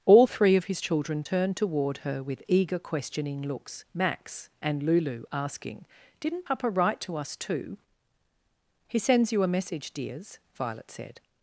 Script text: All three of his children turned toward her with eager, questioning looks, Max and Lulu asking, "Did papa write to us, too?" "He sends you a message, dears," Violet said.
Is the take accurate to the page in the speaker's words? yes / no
no